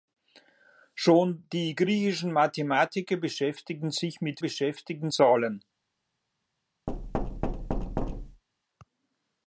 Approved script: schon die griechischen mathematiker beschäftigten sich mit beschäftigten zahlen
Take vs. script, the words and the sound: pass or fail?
fail